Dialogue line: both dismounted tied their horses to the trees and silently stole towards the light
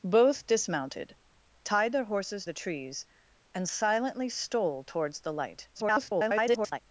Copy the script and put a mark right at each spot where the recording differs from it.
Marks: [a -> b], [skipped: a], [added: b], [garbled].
both dismounted tied their horses [skipped: to] the trees and silently stole towards the light [garbled]